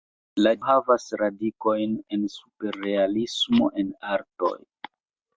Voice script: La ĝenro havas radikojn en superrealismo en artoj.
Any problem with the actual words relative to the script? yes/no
yes